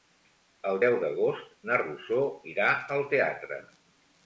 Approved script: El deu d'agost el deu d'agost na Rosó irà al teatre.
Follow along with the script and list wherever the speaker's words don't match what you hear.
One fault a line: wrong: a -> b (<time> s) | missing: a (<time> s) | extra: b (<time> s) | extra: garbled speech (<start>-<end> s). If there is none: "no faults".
missing: el deu d'agost (1.5 s)